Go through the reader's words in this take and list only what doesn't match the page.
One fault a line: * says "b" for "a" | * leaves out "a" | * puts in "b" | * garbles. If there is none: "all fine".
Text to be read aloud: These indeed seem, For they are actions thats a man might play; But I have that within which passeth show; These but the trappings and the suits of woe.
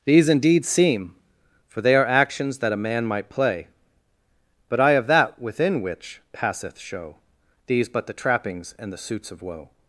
* says "that" for "thats"